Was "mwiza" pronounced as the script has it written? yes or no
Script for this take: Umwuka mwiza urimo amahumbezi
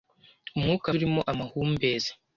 no